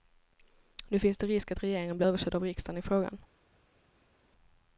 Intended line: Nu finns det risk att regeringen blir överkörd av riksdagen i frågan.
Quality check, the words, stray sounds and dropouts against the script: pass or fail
pass